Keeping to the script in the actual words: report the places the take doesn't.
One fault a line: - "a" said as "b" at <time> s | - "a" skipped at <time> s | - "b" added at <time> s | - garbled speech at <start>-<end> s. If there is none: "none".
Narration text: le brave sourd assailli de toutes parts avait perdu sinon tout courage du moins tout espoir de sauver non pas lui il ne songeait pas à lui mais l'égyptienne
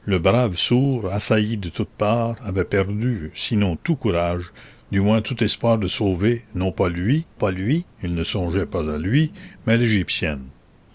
- "pas lui" added at 7.3 s